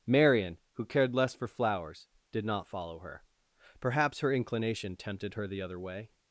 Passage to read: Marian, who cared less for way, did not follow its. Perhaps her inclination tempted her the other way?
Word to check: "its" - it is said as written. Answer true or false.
false